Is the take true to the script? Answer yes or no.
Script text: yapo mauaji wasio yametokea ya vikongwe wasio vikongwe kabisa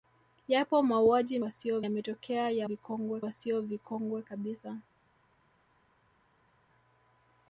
yes